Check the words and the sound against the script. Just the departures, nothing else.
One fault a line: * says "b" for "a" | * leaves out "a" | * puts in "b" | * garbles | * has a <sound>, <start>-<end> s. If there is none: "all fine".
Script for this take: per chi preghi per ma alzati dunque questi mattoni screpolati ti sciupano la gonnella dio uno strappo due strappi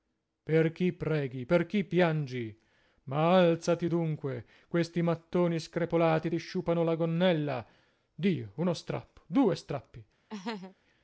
* puts in "chi piangi"
* has a laugh, 10.3-10.8 s